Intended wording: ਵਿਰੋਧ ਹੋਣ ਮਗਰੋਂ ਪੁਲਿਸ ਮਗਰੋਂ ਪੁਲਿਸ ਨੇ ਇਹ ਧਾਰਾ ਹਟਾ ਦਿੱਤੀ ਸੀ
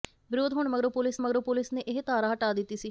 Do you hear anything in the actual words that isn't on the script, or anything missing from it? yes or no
no